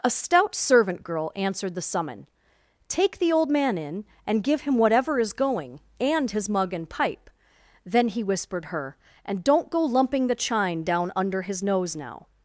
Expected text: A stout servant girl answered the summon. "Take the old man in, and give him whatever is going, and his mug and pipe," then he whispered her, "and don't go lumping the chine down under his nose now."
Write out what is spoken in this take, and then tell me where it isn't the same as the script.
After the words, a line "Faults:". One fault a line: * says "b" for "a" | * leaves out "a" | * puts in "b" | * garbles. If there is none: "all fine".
A stout servant girl answered the summon. "Take the old man in, and give him whatever is going, and his mug and pipe," then he whispered her, "and don't go lumping the chine down under his nose now."
Faults:
all fine